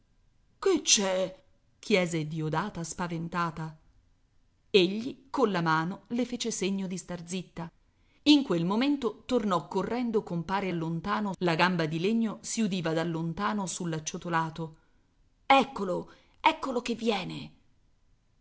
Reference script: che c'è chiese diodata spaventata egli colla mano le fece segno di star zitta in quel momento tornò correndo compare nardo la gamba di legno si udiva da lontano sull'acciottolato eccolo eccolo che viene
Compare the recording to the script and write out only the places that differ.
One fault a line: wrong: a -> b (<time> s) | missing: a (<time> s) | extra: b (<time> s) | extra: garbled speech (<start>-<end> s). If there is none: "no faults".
wrong: nardo -> lontano (10.7 s)